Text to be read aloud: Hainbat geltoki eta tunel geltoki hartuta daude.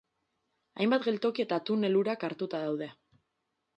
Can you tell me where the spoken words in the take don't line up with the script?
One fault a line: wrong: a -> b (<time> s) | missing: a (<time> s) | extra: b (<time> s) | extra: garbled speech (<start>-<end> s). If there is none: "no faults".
wrong: geltoki -> urak (2.0 s)